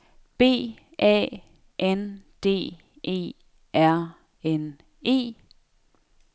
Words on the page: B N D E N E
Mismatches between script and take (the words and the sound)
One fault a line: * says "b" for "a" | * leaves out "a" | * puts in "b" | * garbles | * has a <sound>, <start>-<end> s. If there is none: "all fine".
* puts in "A"
* puts in "R"